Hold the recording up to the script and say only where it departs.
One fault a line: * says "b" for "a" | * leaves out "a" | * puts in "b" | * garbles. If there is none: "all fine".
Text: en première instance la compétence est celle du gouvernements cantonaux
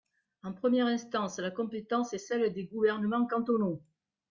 * says "des" for "du"